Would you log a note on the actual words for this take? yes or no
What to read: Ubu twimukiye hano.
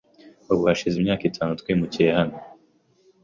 yes